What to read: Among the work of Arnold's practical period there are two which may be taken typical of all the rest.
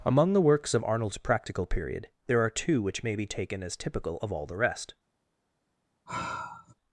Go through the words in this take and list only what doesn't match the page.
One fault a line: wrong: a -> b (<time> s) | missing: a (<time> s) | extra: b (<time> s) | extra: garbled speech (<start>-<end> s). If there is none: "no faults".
wrong: work -> works (0.4 s)
extra: as (3.6 s)